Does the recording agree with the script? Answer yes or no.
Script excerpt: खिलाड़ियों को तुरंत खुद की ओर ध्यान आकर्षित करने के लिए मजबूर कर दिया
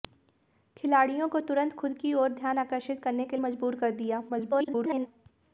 no